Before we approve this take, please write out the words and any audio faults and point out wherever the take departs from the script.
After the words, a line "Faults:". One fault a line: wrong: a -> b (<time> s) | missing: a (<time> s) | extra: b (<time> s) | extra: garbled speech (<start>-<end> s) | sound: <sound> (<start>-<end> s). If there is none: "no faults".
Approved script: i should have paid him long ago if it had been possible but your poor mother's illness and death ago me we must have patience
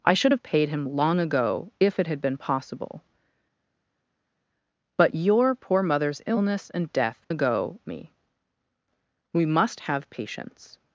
i should have paid him long ago if it had been possible but your poor mother's illness and death ago me we must have patience
Faults:
no faults